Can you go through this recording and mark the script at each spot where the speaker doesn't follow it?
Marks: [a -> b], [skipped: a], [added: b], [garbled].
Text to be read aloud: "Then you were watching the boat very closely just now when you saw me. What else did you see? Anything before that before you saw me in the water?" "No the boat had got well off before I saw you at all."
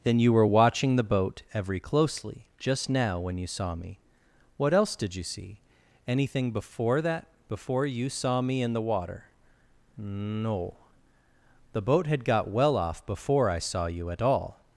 "Then you were watching the boat [very -> every] closely just now when you saw me. What else did you see? Anything before that before you saw me in the water?" "No the boat had got well off before I saw you at all."